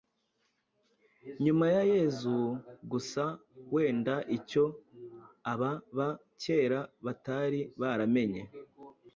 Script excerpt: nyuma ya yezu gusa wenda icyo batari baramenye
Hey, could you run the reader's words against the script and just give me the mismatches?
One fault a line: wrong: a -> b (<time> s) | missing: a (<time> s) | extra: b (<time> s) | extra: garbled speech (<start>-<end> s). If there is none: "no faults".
extra: aba ba kera (5.5 s)